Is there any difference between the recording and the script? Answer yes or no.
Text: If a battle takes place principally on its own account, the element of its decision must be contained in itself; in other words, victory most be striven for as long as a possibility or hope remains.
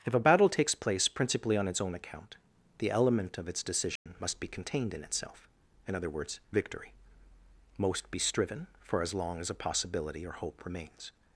no